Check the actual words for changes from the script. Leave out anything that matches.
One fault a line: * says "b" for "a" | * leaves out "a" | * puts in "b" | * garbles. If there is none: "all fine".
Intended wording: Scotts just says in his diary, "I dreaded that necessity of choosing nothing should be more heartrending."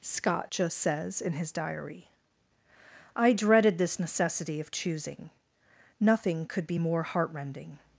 * says "Scott" for "Scotts"
* says "this" for "that"
* says "could" for "should"